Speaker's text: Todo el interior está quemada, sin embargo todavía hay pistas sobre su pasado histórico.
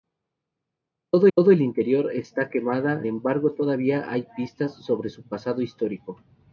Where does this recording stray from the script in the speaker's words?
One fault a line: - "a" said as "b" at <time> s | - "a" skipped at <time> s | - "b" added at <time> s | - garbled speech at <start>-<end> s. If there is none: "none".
- "todo" added at 1.3 s
- "sin" skipped at 3.1 s